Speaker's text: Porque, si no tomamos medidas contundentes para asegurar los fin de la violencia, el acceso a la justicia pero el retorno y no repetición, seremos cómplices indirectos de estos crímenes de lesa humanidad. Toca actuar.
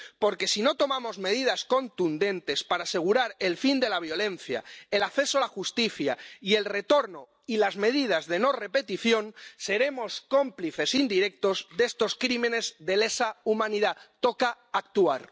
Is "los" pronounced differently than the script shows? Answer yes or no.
yes